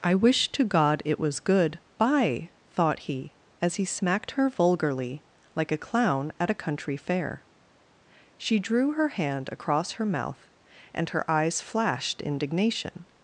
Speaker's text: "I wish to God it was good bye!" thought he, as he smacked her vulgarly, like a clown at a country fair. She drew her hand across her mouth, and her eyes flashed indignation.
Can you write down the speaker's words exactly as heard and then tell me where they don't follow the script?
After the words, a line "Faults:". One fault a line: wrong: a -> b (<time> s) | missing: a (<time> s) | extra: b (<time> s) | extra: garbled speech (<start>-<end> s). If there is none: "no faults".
"I wish to God it was good bye!" thought he, as he smacked her vulgarly, like a clown at a country fair. She drew her hand across her mouth, and her eyes flashed indignation.
Faults:
no faults